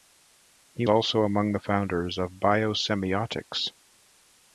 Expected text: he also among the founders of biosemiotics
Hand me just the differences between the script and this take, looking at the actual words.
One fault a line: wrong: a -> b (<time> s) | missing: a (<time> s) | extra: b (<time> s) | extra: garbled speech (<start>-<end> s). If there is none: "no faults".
no faults